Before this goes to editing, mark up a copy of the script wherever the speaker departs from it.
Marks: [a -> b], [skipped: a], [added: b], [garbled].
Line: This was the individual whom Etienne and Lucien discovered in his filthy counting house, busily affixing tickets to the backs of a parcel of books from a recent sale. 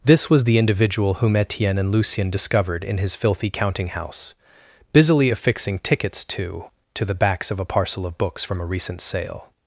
This was the individual whom Etienne and Lucien discovered in his filthy counting house, busily affixing tickets to [added: to] the backs of a parcel of books from a recent sale.